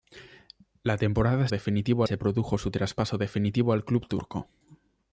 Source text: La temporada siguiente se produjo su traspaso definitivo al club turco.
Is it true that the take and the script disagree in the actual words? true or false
true